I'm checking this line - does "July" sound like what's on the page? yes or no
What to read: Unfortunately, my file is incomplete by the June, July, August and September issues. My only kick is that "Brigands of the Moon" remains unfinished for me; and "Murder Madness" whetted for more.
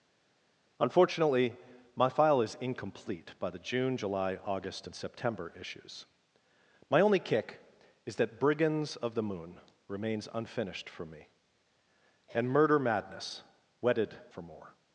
yes